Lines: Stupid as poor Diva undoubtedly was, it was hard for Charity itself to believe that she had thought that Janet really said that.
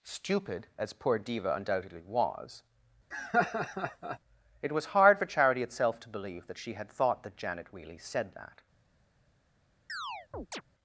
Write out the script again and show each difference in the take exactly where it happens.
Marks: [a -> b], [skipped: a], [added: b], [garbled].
Stupid as poor Diva undoubtedly was, it was hard for Charity itself to believe that she had thought that Janet really said that.